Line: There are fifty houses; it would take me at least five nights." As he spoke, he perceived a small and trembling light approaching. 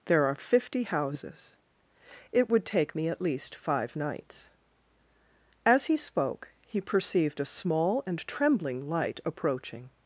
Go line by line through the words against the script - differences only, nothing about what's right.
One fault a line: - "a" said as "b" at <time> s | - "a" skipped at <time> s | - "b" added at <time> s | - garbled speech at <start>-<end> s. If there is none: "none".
none